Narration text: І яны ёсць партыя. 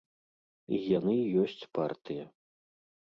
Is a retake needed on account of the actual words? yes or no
no